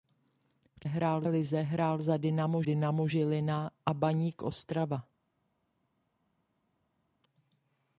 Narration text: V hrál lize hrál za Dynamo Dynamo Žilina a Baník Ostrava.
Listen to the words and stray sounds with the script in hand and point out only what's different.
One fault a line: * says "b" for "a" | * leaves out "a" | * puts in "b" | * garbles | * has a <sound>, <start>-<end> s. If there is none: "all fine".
all fine